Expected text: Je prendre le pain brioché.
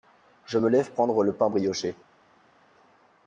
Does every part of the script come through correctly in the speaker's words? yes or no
no